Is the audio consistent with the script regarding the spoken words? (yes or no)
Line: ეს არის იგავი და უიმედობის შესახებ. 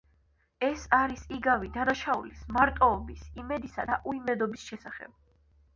no